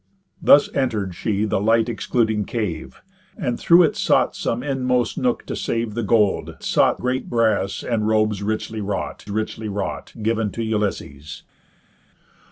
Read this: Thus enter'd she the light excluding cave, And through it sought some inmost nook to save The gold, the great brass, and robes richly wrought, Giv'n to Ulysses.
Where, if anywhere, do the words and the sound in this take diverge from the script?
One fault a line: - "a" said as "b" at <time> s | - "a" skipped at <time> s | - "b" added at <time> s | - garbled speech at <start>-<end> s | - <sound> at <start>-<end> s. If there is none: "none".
- "the" said as "sought" at 6.6 s
- "richly wrought" added at 9.3 s